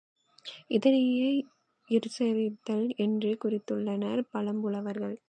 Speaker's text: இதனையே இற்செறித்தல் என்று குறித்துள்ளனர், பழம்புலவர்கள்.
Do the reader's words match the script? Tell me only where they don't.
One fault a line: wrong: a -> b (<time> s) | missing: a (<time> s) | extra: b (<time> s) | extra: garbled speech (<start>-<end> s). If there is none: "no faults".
no faults